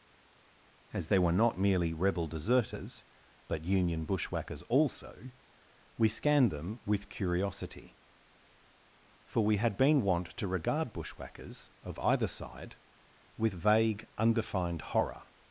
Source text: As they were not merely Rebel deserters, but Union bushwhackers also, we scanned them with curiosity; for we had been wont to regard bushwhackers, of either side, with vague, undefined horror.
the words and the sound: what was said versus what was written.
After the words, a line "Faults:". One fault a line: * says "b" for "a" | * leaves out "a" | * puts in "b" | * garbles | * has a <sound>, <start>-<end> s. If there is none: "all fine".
As they were not merely Rebel deserters, but Union bushwhackers also, we scanned them with curiosity; for we had been wont to regard bushwhackers, of either side, with vague, undefined horror.
Faults:
all fine